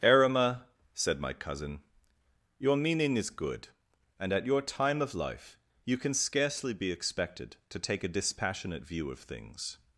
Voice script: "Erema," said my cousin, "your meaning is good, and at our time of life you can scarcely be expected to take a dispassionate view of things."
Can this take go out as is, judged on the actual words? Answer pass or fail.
fail